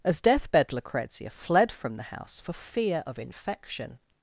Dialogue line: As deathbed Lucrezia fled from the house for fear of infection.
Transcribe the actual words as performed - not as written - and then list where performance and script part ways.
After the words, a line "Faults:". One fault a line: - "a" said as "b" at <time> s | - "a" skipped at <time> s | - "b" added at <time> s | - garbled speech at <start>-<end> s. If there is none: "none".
As deathbed Lucrezia fled from the house for fear of infection.
Faults:
none